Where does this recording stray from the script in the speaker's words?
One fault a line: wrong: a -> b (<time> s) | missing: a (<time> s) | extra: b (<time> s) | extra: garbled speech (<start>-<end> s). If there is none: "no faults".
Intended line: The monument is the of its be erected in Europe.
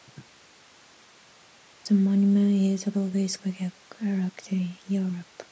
no faults